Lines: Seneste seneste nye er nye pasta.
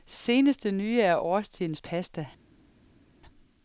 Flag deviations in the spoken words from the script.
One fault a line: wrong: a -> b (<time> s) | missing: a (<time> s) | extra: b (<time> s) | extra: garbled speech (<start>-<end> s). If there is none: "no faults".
missing: seneste (0.7 s)
wrong: nye -> årstidens (1.2 s)